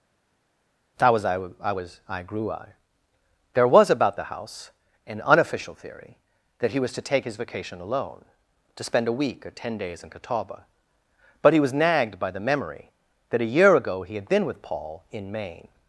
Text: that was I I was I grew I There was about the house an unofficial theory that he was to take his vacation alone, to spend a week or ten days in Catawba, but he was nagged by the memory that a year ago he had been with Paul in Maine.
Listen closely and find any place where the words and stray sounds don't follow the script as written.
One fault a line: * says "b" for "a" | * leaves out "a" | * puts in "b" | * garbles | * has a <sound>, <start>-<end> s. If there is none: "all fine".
all fine